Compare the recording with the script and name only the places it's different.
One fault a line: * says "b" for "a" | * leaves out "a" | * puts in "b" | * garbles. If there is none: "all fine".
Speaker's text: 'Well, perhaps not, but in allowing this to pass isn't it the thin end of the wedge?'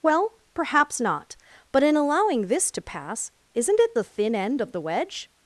all fine